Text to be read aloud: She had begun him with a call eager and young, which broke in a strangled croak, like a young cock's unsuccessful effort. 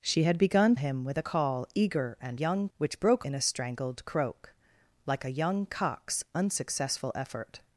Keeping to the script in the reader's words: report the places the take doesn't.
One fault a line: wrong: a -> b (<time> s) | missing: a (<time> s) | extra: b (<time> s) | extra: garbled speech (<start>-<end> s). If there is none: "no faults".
no faults